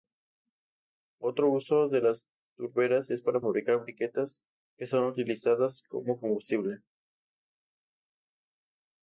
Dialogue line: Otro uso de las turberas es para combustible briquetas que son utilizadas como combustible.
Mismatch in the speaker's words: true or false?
true